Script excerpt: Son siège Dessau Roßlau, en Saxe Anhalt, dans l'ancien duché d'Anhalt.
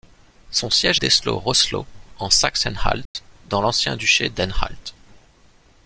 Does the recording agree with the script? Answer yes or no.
yes